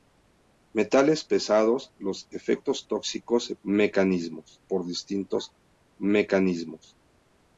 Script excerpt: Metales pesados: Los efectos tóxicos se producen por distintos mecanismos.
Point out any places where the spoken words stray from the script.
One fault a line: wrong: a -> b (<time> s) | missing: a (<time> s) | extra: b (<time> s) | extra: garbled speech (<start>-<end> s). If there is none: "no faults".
wrong: producen -> mecanismos (3.6 s)